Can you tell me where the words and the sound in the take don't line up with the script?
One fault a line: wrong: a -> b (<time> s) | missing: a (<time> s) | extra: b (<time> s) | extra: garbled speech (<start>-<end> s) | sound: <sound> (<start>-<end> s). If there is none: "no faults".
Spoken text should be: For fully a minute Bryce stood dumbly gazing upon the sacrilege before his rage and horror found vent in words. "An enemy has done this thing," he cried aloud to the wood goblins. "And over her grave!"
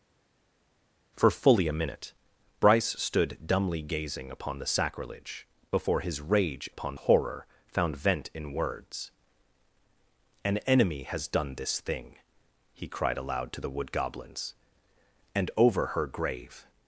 wrong: and -> upon (6.7 s)